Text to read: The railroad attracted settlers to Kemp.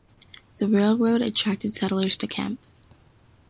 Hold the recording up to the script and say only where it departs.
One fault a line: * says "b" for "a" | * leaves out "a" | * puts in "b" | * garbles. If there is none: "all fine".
all fine